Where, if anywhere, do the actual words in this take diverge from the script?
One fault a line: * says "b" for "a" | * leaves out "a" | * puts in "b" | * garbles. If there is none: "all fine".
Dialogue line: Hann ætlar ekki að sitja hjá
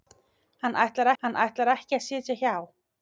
* puts in "hann ætlar"